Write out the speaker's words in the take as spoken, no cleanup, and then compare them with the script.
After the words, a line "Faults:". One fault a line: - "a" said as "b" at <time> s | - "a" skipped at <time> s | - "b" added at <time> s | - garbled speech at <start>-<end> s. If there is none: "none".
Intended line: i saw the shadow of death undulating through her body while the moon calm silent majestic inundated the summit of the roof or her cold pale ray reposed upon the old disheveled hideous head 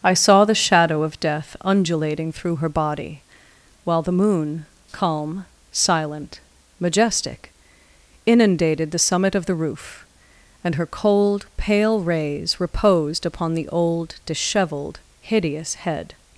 i saw the shadow of death undulating through her body while the moon calm silent majestic inundated the summit of the roof and her cold pale rays reposed upon the old disheveled hideous head
Faults:
- "or" said as "and" at 10.6 s
- "ray" said as "rays" at 12.0 s